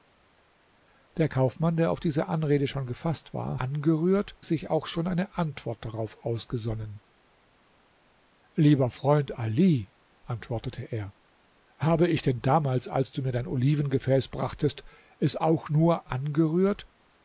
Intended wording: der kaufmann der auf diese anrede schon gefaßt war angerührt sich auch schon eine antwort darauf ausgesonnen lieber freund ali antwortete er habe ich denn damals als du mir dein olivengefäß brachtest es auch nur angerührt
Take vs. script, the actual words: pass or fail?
pass